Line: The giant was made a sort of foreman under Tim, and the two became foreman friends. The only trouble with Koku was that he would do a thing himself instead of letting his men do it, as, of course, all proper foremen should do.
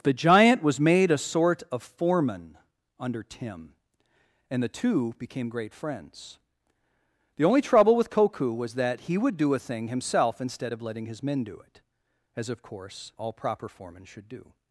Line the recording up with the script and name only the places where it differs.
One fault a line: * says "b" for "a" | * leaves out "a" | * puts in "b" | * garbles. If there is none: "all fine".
* says "great" for "foreman"